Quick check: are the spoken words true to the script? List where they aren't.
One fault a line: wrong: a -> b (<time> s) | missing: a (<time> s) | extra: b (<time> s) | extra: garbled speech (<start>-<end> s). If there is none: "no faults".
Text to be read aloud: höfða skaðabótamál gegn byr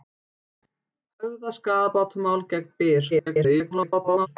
extra: garbled speech (3.1-4.3 s)